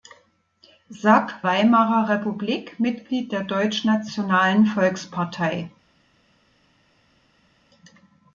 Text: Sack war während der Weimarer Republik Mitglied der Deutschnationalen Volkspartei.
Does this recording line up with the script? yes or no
no